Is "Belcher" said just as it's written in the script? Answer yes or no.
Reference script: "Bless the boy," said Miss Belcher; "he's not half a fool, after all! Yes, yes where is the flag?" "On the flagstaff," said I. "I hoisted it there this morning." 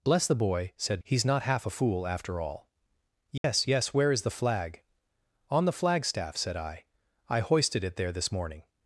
no